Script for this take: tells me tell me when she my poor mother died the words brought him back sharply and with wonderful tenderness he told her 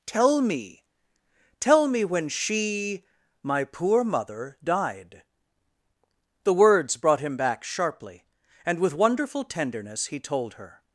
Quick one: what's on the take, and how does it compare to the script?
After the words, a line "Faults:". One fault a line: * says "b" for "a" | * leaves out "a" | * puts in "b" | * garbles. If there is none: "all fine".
tell me tell me when she my poor mother died the words brought him back sharply and with wonderful tenderness he told her
Faults:
* says "tell" for "tells"